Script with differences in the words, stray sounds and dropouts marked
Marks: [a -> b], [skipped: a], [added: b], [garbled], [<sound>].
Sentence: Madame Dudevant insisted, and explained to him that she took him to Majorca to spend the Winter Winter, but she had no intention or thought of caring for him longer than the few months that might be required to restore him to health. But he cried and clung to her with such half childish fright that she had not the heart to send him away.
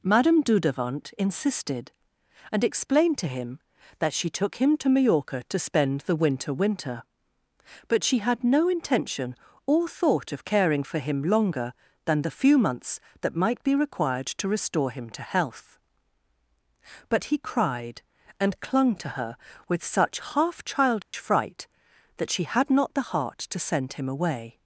Madame Dudevant insisted, and explained to him that she took him to Majorca to spend the Winter Winter, but she had no intention or thought of caring for him longer than the few months that might be required to restore him to health. But he cried and clung to her with such half childish [dropout] fright that she had not the heart to send him away.